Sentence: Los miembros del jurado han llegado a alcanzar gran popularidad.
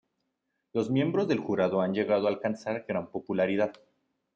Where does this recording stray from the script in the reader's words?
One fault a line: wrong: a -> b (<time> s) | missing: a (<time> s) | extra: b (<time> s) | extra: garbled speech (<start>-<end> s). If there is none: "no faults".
no faults